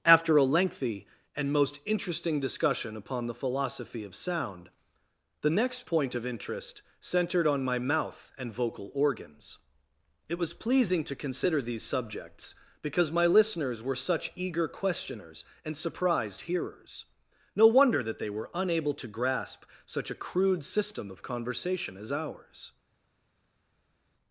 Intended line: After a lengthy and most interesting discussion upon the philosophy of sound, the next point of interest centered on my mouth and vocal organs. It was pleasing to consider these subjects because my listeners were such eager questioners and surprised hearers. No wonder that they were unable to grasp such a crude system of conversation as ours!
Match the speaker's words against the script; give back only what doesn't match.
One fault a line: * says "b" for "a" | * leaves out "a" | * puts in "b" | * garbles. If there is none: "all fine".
all fine